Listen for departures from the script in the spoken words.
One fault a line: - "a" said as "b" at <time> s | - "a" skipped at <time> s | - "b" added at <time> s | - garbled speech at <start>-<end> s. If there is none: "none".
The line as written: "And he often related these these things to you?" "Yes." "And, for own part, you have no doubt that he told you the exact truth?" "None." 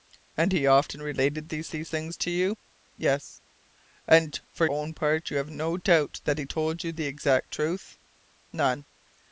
none